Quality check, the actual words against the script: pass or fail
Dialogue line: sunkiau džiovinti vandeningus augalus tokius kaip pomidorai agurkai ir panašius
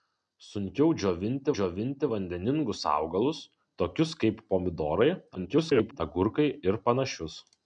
fail